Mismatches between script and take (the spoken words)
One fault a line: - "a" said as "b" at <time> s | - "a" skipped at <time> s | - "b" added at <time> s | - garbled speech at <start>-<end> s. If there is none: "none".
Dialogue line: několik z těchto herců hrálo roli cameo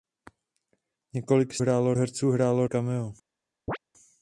- "těchto" said as "hrálo" at 1.6 s
- "roli" skipped at 2.7 s